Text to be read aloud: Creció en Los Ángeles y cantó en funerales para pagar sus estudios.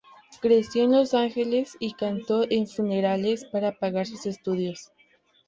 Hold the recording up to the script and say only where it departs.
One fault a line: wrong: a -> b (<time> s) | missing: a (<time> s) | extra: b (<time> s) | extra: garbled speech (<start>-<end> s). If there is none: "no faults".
no faults